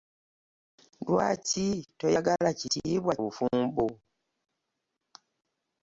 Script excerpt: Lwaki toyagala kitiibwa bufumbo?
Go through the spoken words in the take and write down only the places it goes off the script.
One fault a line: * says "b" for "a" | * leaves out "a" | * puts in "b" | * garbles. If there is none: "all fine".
all fine